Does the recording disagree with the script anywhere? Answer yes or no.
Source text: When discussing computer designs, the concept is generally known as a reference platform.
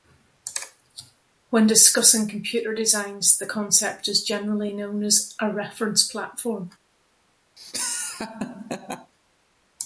no